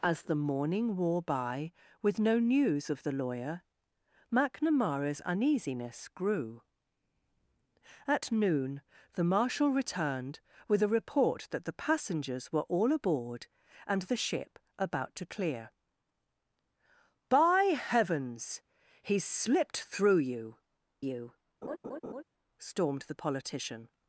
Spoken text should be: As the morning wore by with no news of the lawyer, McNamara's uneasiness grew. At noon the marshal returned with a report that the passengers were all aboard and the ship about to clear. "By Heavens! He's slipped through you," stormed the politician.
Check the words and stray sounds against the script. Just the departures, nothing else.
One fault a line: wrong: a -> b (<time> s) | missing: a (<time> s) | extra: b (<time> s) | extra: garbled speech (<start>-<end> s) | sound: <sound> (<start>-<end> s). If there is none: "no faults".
extra: you (21.0 s)
sound: laugh (21.6-22.2 s)